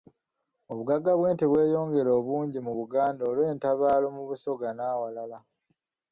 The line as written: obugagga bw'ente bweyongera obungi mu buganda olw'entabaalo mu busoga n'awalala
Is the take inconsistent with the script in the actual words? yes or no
no